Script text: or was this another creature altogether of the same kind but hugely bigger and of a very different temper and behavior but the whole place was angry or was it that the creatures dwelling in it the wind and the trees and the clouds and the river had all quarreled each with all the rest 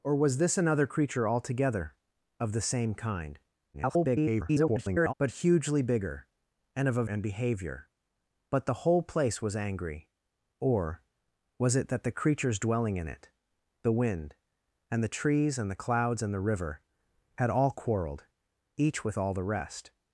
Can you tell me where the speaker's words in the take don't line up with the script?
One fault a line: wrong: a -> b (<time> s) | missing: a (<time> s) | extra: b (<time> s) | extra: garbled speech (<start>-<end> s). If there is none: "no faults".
extra: garbled speech (3.7-5.1 s)
missing: very different temper (7.0 s)